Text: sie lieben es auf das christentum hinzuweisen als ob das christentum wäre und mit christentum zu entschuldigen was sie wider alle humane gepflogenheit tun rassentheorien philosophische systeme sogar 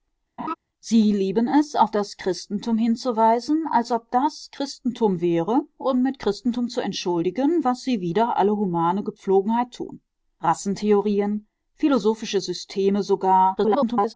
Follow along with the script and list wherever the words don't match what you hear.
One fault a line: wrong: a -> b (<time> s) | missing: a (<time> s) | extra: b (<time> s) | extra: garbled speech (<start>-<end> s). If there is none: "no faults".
extra: garbled speech (13.6-14.1 s)